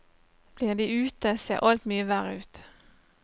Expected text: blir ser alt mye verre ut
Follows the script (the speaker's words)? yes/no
no